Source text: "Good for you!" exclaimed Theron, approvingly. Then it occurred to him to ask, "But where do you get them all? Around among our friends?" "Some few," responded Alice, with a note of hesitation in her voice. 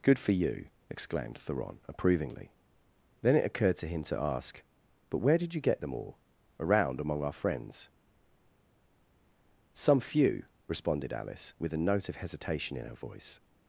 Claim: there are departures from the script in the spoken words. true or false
true